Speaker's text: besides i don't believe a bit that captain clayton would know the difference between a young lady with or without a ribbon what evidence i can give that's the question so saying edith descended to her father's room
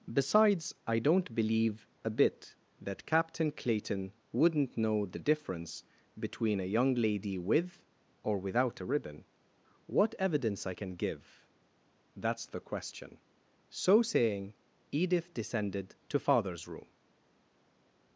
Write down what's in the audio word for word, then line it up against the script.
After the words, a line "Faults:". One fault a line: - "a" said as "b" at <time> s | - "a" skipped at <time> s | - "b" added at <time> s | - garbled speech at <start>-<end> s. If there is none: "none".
besides i don't believe a bit that captain clayton wouldn't know the difference between a young lady with or without a ribbon what evidence i can give that's the question so saying edith descended to father's room
Faults:
- "would" said as "wouldn't" at 4.3 s
- "her" skipped at 16.2 s